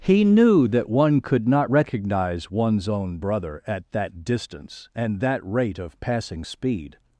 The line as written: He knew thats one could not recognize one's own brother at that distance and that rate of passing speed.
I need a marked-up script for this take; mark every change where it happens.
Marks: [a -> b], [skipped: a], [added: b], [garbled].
He knew [thats -> that] one could not recognize one's own brother at that distance and that rate of passing speed.